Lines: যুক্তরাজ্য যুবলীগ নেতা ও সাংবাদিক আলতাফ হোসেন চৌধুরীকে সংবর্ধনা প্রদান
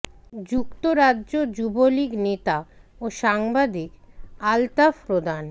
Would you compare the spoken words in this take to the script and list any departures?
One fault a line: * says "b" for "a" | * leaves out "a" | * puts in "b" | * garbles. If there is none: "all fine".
* leaves out "হোসেন চৌধুরীকে সংবর্ধনা"